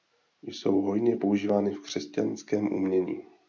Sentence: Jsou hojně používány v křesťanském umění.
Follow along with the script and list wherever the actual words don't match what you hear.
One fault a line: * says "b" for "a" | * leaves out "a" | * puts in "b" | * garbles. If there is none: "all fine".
all fine